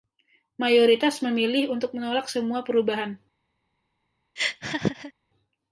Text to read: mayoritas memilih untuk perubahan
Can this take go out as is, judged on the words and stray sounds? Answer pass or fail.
fail